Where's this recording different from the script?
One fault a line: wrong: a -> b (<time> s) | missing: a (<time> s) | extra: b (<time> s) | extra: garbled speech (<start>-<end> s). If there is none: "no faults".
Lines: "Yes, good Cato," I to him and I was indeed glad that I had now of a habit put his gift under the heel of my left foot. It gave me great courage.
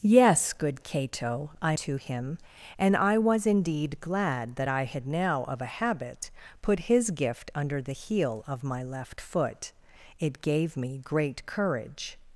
no faults